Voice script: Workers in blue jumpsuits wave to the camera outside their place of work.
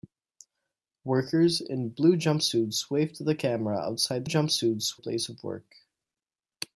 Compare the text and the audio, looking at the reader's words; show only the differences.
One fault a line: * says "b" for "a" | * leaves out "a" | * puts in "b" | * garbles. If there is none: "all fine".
* says "jumpsuits" for "their"